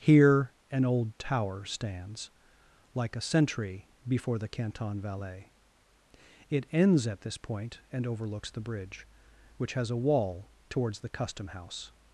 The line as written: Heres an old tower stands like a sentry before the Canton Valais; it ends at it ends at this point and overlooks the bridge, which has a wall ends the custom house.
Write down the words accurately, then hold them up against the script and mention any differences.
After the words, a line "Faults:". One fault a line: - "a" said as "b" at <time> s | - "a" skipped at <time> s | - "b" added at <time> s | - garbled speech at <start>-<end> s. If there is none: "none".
Here an old tower stands like a sentry before the Canton Valais; it ends at this point and overlooks the bridge, which has a wall towards the custom house.
Faults:
- "Heres" said as "Here" at 0.0 s
- "it ends at" skipped at 7.2 s
- "ends" said as "towards" at 10.7 s